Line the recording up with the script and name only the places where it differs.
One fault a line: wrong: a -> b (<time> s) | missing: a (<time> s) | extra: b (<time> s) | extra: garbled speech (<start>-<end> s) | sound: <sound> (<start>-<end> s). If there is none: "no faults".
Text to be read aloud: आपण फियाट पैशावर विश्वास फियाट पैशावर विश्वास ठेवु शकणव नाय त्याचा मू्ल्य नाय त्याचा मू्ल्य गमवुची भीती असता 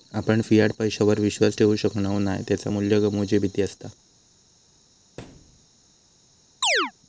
missing: फियाट पैशावर विश्वास (1.6 s)
missing: नाय त्याचा मू्ल्य (3.0 s)
sound: thud (5.2-5.7 s)
sound: chirp (6.6-6.9 s)